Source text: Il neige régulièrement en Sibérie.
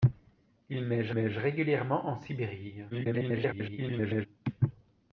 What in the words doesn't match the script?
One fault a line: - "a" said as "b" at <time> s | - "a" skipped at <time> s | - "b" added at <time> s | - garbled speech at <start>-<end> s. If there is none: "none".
- "neige" added at 1.1 s
- garbled speech at 2.9-4.3 s